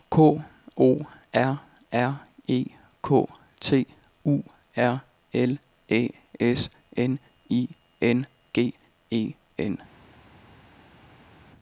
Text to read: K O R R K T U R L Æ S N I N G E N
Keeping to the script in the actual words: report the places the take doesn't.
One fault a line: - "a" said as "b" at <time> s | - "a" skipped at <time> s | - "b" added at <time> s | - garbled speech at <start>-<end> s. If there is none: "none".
- "E" added at 2.5 s